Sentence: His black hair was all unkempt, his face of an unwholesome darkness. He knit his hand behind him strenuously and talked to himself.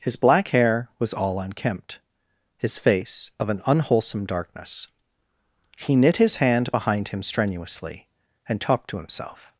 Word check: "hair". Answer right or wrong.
right